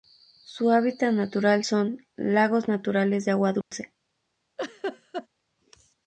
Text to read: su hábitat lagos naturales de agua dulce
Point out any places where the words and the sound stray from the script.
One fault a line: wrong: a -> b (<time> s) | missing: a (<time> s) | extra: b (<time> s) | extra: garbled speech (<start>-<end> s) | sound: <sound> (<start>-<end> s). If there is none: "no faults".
extra: natural son (1.1 s)
sound: dropout (3.6-3.7 s)
sound: laugh (4.6-5.3 s)